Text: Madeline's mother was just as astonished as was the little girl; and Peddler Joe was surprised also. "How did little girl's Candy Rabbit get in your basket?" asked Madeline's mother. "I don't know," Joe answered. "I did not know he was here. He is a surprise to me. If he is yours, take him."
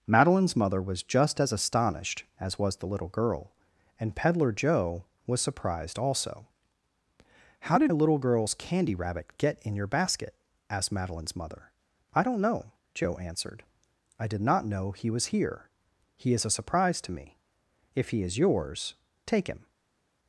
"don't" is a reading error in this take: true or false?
false